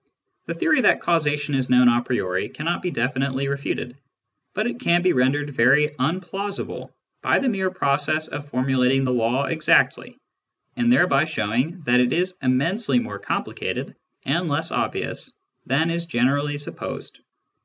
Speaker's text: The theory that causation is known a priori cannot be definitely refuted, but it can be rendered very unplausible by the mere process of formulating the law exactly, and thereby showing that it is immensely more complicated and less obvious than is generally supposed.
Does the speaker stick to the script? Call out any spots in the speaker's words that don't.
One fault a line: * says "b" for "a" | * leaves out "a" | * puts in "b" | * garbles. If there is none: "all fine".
all fine